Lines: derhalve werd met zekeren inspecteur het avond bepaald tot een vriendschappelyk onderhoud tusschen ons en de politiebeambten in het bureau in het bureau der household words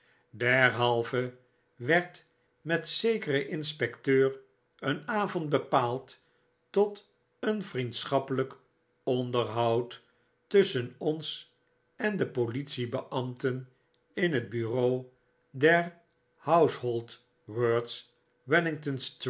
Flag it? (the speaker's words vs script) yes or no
yes